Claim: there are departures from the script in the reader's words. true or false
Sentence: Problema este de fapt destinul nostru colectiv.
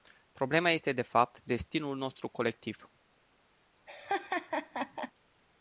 false